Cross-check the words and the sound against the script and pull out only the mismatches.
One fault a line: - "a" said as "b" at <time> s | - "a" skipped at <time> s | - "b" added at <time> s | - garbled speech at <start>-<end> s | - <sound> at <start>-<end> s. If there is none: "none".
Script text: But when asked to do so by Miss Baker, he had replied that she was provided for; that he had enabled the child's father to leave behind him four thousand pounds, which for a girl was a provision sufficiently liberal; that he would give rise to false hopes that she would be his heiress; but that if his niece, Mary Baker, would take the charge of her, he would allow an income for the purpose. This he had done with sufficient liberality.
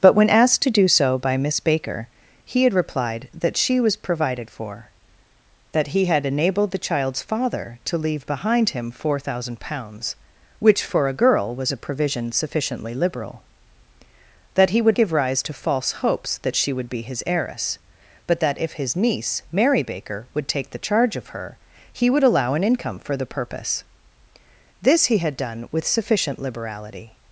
none